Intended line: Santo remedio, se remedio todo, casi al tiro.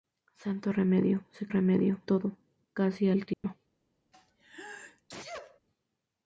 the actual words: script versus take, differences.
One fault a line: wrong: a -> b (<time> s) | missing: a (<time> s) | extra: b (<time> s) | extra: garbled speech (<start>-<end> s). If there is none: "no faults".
no faults